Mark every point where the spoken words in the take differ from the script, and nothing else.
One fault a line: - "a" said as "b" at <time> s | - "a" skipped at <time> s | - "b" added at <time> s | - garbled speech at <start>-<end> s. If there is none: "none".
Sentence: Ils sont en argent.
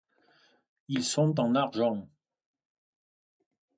none